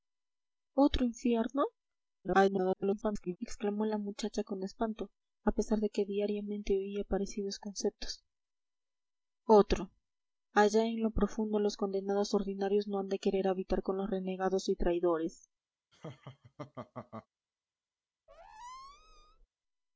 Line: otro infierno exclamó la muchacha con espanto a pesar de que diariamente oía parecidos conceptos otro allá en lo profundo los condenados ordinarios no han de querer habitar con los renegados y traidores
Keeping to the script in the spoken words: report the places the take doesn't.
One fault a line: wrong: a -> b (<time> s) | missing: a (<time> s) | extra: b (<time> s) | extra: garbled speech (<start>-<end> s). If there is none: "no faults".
extra: garbled speech (2.2-3.4 s)